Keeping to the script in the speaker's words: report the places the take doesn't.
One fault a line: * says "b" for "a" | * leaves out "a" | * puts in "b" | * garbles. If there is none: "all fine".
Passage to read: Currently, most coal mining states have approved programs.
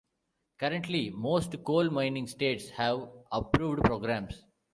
all fine